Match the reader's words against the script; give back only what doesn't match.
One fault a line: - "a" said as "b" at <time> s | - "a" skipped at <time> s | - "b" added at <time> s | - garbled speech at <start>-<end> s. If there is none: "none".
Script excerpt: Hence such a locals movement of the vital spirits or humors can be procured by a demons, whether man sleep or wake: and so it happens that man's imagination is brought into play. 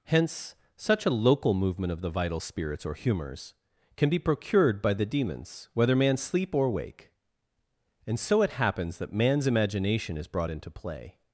- "locals" said as "local" at 1.1 s
- "a" said as "the" at 4.9 s